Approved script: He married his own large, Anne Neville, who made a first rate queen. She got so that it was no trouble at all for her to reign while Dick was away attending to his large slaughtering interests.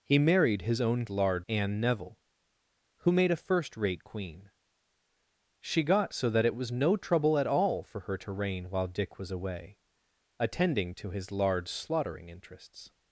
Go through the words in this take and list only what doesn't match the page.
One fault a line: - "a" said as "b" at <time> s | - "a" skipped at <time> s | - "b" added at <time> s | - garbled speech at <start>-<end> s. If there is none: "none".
none